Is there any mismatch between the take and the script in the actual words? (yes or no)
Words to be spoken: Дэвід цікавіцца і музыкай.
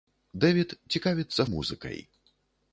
no